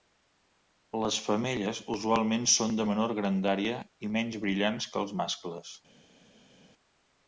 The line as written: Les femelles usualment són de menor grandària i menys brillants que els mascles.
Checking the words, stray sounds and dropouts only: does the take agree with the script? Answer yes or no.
yes